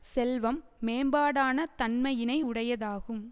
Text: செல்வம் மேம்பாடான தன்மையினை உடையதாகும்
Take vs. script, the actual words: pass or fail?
pass